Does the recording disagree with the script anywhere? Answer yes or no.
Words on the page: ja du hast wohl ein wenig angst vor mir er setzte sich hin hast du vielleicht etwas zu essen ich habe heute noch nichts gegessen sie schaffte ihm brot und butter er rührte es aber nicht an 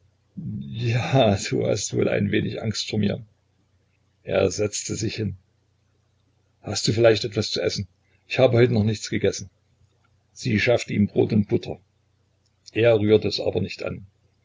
no